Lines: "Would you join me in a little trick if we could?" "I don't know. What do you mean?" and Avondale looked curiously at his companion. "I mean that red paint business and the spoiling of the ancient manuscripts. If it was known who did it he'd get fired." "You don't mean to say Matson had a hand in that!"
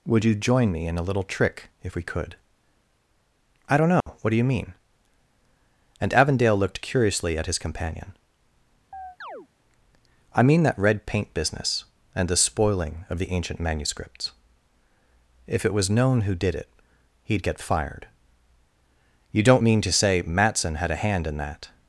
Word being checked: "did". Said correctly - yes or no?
yes